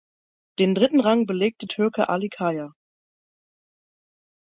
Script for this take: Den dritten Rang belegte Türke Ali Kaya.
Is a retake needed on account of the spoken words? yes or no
no